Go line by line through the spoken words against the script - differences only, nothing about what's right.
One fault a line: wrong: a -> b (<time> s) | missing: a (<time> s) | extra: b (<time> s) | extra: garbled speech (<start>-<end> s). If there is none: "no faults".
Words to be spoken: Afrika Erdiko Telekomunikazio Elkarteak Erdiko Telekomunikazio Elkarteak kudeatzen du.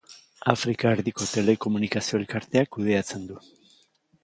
missing: Erdiko Telekomunikazio Elkarteak (2.7 s)